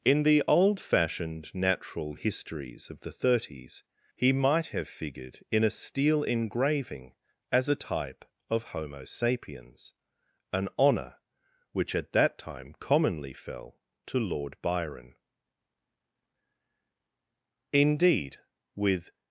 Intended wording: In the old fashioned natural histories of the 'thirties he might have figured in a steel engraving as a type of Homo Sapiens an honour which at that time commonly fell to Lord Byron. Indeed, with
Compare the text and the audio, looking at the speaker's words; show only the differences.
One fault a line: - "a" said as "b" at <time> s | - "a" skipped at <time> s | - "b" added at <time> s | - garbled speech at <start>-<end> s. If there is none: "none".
none